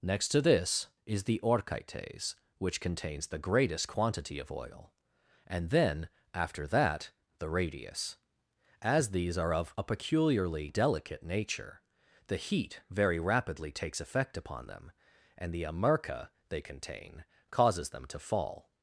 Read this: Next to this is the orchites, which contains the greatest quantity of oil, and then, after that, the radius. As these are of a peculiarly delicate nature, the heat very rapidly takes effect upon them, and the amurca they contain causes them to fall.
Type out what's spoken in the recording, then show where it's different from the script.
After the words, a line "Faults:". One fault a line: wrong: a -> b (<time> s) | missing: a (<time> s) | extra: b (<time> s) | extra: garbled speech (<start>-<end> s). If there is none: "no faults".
Next to this is the orchites, which contains the greatest quantity of oil, and then, after that, the radius. As these are of a peculiarly delicate nature, the heat very rapidly takes effect upon them, and the amurca they contain causes them to fall.
Faults:
no faults